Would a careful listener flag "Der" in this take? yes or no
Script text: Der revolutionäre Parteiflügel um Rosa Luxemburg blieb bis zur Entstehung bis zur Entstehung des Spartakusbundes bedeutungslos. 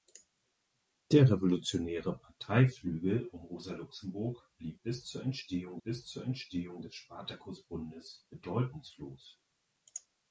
no